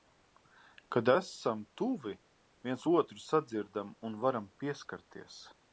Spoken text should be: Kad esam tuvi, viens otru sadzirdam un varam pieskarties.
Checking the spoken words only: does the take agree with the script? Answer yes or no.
yes